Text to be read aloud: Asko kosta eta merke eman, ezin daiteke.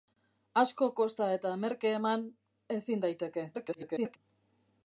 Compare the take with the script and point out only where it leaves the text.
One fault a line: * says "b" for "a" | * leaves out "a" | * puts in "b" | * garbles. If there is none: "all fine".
* garbles